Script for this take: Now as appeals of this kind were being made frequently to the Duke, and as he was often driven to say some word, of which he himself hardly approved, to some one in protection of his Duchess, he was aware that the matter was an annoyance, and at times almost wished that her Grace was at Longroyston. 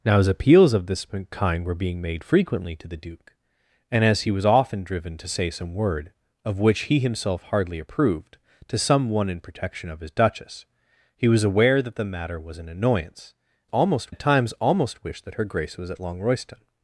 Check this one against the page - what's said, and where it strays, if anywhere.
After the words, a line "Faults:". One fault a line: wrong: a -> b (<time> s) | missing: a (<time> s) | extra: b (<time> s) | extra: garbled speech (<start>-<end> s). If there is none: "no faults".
Now as appeals of this kind were being made frequently to the Duke, and as he was often driven to say some word, of which he himself hardly approved, to some one in protection of his Duchess, he was aware that the matter was an annoyance, almost at times almost wished that her Grace was at Longroyston.
Faults:
wrong: and -> almost (13.6 s)